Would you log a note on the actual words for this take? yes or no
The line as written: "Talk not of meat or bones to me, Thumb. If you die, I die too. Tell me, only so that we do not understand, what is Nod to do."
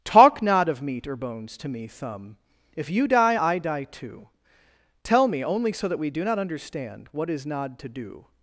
no